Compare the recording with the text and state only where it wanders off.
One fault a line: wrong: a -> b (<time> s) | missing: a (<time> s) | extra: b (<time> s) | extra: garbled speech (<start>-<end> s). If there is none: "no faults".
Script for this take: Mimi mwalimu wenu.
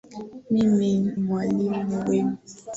no faults